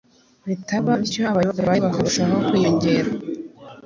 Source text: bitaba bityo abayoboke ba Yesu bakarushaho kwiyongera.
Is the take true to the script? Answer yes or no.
no